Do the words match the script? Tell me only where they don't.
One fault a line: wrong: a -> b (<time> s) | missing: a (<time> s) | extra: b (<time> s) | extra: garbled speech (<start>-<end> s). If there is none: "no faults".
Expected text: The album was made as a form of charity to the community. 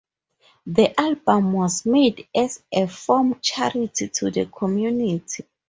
missing: of (3.4 s)